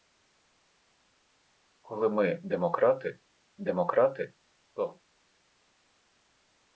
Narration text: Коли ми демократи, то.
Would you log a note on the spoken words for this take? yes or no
yes